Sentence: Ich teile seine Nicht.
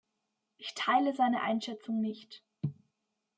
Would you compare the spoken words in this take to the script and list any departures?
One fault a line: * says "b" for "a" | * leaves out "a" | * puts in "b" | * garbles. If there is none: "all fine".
* puts in "Einschätzung"